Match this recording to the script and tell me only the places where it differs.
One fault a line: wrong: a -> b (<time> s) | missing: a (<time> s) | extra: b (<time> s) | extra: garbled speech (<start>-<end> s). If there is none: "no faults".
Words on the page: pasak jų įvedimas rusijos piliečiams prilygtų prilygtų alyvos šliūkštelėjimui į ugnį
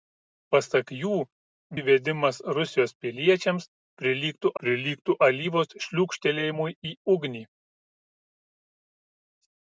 no faults